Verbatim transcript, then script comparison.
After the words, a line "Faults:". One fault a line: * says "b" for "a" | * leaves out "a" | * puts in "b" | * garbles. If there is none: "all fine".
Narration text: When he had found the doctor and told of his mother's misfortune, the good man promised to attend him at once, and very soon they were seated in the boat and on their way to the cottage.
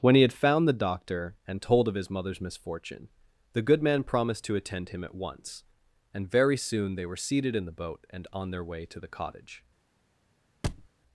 When he had found the doctor and told of his mother's misfortune, the good man promised to attend him at once, and very soon they were seated in the boat and on their way to the cottage.
Faults:
all fine